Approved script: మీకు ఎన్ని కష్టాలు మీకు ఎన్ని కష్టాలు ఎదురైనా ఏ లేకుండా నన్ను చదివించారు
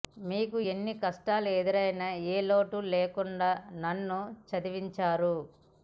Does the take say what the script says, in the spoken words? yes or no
no